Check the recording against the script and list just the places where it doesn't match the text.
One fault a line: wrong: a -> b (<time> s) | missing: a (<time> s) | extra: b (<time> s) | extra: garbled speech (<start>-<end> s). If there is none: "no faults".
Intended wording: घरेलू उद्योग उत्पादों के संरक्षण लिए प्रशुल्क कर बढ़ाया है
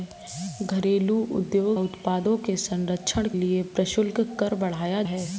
no faults